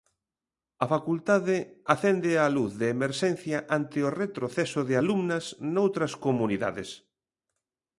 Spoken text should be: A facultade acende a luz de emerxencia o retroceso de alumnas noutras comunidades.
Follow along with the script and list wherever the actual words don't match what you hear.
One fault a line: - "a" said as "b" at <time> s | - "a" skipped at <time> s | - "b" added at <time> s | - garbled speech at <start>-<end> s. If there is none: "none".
- "ante" added at 3.8 s